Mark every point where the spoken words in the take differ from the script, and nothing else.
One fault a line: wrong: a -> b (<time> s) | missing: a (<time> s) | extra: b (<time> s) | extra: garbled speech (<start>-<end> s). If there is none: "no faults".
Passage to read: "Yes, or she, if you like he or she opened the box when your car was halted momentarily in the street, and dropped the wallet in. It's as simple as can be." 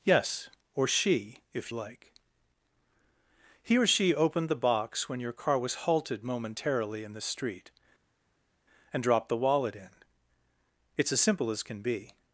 missing: you (1.7 s)